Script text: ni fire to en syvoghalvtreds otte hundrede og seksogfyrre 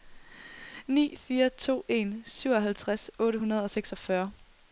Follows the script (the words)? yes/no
yes